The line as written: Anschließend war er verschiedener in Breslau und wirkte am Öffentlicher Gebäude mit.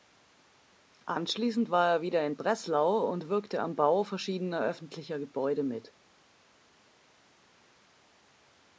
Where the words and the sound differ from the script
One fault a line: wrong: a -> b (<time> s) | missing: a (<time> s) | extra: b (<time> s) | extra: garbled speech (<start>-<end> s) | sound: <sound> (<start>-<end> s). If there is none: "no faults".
wrong: verschiedener -> wieder (2.0 s)
extra: Bau verschiedener (3.8 s)